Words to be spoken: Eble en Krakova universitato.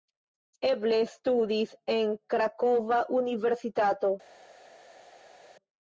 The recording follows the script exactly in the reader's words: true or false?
false